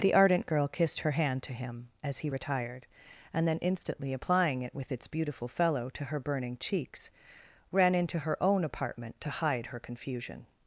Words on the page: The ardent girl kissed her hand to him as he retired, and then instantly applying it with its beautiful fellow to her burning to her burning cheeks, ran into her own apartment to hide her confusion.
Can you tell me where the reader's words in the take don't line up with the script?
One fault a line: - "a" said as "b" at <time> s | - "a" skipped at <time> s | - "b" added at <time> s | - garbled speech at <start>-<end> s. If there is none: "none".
- "to her burning" skipped at 6.6 s